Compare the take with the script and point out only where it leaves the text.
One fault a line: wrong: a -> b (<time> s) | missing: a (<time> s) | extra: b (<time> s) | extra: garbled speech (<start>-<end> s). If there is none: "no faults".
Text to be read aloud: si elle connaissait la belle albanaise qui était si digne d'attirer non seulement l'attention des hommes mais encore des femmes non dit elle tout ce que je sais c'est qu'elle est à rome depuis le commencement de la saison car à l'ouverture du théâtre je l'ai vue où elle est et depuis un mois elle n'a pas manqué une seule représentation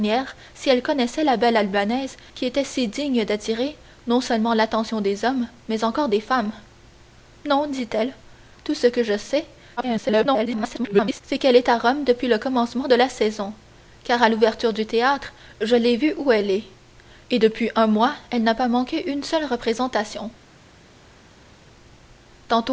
extra: garbled speech (9.8-11.2 s)